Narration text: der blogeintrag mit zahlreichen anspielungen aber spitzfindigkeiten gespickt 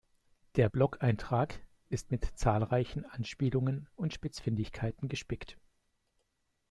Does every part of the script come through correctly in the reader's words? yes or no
no